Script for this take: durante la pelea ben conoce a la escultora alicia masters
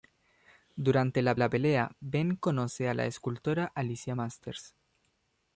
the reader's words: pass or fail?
fail